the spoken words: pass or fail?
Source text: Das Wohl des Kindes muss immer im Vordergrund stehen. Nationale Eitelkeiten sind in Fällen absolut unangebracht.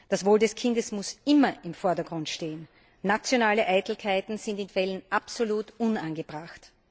pass